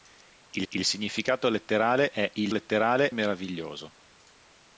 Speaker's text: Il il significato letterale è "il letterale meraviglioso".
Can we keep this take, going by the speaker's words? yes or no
yes